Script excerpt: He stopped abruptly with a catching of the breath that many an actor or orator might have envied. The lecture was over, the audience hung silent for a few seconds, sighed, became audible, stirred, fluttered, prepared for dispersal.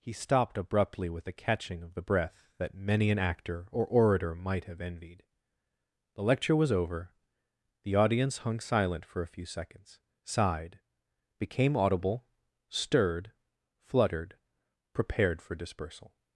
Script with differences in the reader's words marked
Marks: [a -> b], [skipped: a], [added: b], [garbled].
He stopped abruptly with a catching of the breath that many an actor or orator might have envied. The lecture was over, the audience hung silent for a few seconds, sighed, became audible, stirred, fluttered, prepared for dispersal.